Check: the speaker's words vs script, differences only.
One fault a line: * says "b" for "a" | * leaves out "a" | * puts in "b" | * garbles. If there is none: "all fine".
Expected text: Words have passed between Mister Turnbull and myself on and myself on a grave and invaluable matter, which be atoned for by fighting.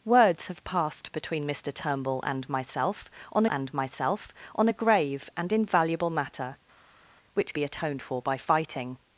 all fine